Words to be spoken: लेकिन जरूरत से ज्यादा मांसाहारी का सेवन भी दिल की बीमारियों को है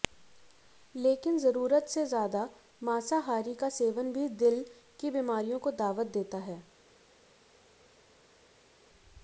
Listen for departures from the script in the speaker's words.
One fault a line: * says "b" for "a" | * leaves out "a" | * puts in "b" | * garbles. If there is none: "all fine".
* puts in "दावत देता"